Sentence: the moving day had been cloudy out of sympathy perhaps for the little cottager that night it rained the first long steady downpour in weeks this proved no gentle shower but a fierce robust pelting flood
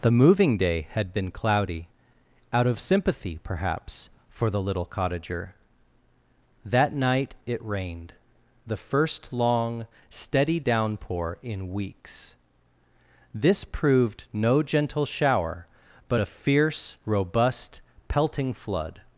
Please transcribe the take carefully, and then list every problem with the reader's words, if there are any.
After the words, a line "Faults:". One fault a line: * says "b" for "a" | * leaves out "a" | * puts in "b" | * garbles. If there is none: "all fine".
the moving day had been cloudy out of sympathy perhaps for the little cottager that night it rained the first long steady downpour in weeks this proved no gentle shower but a fierce robust pelting flood
Faults:
all fine